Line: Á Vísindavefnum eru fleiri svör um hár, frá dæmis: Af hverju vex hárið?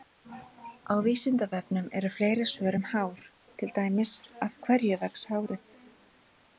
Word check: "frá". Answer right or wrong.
wrong